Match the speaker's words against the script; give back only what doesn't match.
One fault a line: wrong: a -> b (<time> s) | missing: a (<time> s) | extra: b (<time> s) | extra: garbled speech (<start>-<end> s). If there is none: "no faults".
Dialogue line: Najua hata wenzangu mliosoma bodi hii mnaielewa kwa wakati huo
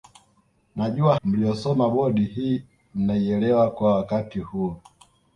missing: hata wenzangu (1.1 s)